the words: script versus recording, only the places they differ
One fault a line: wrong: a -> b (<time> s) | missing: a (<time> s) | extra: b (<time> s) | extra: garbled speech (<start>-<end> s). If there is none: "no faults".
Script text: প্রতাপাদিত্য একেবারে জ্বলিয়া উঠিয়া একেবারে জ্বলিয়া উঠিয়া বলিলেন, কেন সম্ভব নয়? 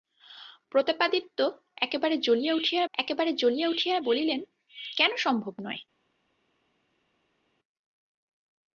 no faults